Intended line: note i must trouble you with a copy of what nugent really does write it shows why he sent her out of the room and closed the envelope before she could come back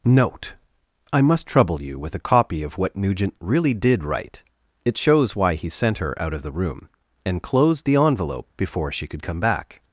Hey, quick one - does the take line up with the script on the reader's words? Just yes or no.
no